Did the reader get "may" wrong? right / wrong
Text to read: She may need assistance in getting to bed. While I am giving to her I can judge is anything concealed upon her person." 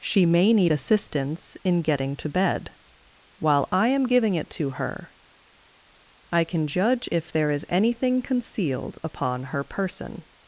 right